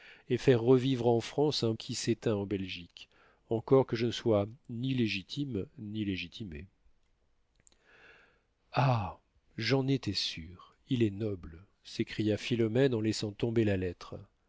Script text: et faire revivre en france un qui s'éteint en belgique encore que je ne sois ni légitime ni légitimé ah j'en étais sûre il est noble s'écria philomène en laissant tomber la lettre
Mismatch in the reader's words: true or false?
false